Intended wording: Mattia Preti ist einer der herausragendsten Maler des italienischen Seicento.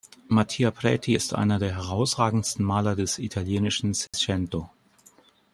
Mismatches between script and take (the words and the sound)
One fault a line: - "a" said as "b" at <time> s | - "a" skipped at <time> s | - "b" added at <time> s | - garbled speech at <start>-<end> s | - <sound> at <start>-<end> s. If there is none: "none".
- dropout at 4.1-4.1 s